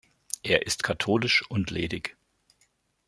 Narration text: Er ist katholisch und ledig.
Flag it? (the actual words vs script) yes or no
no